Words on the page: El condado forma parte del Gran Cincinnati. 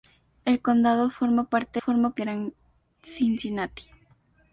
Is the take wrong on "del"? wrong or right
wrong